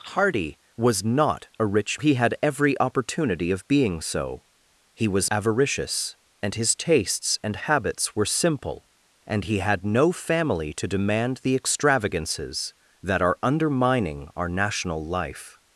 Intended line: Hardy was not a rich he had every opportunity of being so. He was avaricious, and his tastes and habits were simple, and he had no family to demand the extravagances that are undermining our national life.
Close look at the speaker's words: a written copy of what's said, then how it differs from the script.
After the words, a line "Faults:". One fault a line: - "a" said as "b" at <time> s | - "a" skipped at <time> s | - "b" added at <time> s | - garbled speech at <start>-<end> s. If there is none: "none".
Hardy was not a rich he had every opportunity of being so. He was avaricious, and his tastes and habits were simple, and he had no family to demand the extravagances that are undermining our national life.
Faults:
none